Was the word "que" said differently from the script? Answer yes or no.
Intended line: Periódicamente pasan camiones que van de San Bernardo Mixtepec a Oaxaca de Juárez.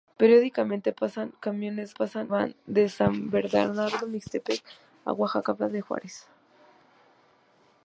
yes